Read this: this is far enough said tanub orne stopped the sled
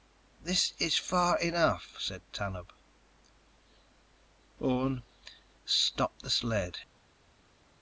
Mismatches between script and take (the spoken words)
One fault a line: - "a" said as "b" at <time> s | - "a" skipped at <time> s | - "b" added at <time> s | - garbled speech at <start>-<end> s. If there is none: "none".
none